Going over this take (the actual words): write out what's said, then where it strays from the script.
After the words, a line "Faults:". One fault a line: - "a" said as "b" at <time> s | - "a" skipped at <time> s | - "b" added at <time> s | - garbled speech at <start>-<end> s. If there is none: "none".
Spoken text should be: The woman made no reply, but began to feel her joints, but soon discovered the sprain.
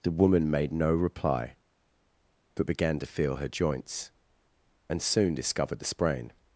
The woman made no reply, but began to feel her joints, and soon discovered the sprain.
Faults:
- "but" said as "and" at 4.9 s